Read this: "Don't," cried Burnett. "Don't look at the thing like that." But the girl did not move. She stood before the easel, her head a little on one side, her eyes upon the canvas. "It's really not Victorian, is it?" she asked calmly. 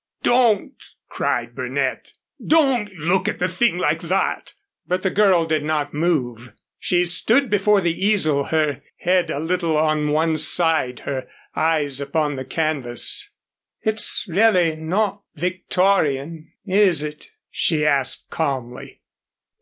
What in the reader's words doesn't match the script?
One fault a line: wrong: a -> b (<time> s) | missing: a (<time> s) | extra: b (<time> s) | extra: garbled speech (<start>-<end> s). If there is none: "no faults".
no faults